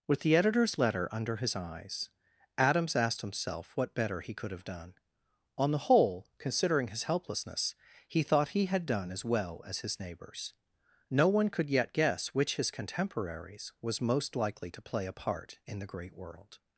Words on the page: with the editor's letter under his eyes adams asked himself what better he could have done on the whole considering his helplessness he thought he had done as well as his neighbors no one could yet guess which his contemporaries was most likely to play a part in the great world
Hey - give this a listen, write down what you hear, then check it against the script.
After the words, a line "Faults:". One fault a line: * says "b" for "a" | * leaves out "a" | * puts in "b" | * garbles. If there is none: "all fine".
with the editor's letter under his eyes adams asked himself what better he could have done on the whole considering his helplessness he thought he had done as well as his neighbors no one could yet guess which his contemporaries was most likely to play a part in the great world
Faults:
all fine